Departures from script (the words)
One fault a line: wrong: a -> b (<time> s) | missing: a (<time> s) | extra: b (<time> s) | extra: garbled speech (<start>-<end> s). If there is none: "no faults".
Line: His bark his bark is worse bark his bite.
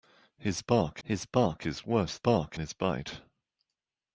no faults